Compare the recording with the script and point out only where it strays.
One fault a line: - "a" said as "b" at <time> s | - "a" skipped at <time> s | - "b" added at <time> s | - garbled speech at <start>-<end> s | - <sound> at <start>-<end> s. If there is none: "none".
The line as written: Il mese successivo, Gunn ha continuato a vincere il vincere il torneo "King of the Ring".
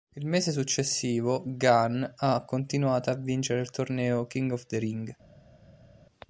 - "vincere il" skipped at 3.7 s